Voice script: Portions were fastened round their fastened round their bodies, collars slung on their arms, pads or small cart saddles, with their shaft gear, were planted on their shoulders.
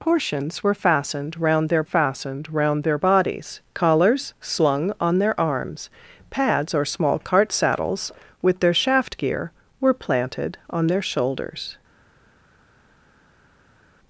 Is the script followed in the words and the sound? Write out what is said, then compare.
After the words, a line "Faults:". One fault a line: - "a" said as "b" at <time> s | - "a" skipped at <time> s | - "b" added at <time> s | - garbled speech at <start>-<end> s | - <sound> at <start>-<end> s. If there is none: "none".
Portions were fastened round their fastened round their bodies, collars slung on their arms, pads or small cart saddles, with their shaft gear, were planted on their shoulders.
Faults:
none